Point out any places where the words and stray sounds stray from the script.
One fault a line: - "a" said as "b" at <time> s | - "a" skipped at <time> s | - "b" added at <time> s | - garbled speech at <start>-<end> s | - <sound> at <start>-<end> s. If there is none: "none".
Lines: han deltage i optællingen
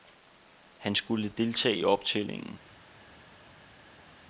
- "skulle" added at 0.9 s